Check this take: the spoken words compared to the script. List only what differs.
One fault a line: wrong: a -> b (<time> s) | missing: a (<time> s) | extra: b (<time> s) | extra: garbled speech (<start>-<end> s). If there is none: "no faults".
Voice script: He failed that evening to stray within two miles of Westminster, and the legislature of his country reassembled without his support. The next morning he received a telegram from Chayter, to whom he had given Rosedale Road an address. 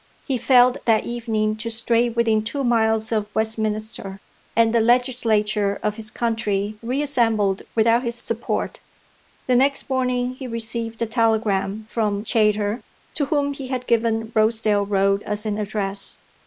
extra: as (15.2 s)